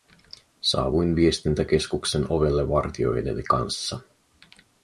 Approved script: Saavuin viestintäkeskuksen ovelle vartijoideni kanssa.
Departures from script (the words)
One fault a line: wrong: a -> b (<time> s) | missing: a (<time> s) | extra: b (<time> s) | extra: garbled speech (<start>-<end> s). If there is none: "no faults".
no faults